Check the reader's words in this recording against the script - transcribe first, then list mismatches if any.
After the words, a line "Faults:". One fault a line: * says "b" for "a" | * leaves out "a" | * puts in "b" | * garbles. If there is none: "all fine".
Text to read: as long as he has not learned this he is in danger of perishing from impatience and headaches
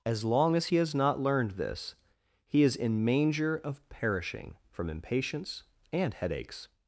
as long as he has not learned this he is in manger of perishing from impatience and headaches
Faults:
* says "manger" for "danger"